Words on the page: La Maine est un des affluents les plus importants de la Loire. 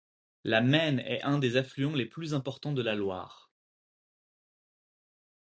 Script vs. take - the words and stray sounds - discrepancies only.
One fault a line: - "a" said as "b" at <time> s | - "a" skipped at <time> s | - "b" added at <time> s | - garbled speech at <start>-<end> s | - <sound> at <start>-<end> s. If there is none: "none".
none